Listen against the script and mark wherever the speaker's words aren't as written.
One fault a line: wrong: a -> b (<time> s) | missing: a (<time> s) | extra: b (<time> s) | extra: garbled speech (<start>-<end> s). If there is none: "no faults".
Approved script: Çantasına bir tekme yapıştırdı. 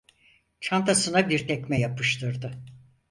no faults